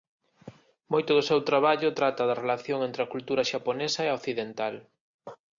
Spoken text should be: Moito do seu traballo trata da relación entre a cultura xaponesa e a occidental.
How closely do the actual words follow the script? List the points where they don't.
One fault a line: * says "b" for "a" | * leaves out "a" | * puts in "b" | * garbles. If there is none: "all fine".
all fine